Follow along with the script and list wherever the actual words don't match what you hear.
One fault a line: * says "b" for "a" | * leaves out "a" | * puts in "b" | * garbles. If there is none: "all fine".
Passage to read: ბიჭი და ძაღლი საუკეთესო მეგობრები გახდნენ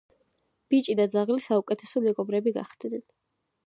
all fine